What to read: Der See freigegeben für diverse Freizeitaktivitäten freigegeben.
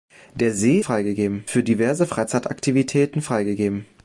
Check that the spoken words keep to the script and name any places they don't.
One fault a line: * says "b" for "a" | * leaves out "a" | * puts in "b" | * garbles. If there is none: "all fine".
all fine